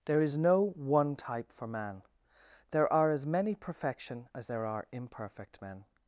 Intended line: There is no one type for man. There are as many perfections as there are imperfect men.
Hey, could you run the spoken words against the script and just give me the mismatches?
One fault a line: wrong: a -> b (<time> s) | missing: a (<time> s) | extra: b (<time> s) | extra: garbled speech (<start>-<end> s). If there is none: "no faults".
wrong: perfections -> perfection (3.5 s)